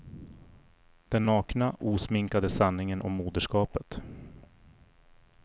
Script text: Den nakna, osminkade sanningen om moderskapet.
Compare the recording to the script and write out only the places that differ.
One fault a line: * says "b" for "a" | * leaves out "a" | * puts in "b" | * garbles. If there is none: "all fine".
all fine